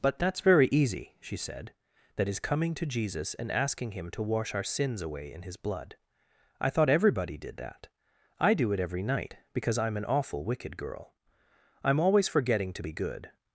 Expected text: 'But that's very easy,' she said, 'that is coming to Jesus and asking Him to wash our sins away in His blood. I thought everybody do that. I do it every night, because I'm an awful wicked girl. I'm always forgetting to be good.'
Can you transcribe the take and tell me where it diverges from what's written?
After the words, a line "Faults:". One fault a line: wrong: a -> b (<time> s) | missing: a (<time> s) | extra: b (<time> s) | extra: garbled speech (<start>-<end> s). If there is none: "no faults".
'But that's very easy,' she said, 'that is coming to Jesus and asking Him to wash our sins away in His blood. I thought everybody did that. I do it every night, because I'm an awful wicked girl. I'm always forgetting to be good.'
Faults:
wrong: do -> did (7.4 s)